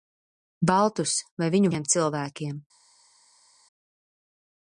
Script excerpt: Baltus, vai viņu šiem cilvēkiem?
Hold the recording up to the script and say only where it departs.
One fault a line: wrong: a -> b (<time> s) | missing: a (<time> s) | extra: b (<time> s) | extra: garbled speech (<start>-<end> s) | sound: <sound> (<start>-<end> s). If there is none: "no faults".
no faults